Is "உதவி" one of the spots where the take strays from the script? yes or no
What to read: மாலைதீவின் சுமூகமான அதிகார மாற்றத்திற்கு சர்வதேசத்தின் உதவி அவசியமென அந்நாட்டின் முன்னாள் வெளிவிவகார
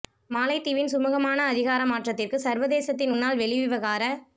yes